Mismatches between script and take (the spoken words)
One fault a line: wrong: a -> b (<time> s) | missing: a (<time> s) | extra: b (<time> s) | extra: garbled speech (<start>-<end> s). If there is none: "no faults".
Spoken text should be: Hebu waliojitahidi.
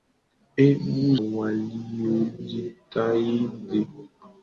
no faults